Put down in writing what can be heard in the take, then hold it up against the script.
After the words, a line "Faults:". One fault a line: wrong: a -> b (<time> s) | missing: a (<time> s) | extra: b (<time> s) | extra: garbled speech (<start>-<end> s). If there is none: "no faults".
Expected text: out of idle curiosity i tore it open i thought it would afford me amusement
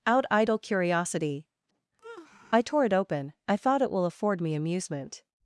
out idle curiosity i tore it open i thought it will afford me amusement
Faults:
missing: of (0.3 s)
wrong: would -> will (3.9 s)